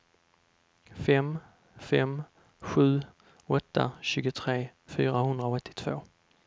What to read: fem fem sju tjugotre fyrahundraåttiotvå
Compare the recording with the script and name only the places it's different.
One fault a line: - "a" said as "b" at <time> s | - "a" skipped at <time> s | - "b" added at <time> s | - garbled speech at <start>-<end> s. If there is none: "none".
- "åtta" added at 3.6 s